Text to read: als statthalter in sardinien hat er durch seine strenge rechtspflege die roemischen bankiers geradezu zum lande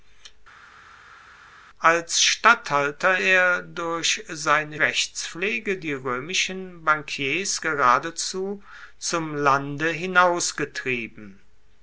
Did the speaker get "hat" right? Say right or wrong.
wrong